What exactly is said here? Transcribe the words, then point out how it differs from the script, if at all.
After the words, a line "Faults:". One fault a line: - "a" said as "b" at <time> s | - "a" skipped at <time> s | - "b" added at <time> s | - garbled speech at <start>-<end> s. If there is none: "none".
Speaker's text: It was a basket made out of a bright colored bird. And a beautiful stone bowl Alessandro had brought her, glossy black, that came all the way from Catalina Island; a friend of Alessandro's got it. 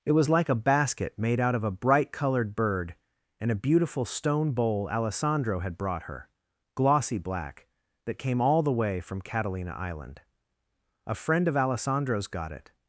It was like a basket made out of a bright colored bird. And a beautiful stone bowl Alessandro had brought her, glossy black, that came all the way from Catalina Island; a friend of Alessandro's got it.
Faults:
- "like" added at 0.3 s